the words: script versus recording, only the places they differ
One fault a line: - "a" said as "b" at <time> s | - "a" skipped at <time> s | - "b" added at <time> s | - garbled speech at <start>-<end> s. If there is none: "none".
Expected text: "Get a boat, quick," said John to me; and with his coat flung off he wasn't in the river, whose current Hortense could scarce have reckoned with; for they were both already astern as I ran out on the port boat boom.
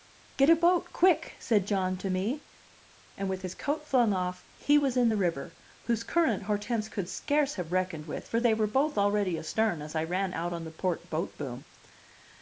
- "wasn't" said as "was" at 4.8 s